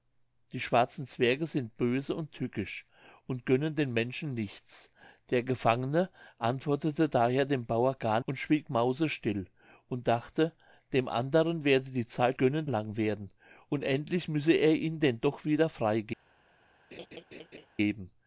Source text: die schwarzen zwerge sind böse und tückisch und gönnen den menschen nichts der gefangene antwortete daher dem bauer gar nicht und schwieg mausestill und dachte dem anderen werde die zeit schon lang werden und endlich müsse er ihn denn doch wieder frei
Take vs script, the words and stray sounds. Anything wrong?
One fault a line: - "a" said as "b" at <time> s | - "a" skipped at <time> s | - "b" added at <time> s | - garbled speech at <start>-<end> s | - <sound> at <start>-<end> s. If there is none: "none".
- "nicht" skipped at 8.2 s
- "schon" said as "gönnen" at 12.4 s
- laugh at 16.9-17.7 s